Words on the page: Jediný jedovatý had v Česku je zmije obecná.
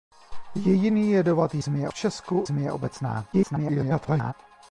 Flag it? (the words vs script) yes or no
yes